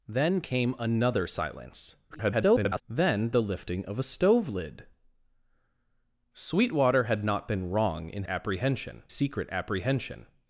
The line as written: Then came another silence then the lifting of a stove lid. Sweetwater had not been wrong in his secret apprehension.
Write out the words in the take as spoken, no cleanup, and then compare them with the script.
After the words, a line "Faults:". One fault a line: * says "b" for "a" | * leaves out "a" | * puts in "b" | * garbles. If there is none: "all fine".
Then came another silence [garbled] then the lifting of a stove lid. Sweetwater had not been wrong in apprehension secret apprehension.
Faults:
* garbles
* says "apprehension" for "his"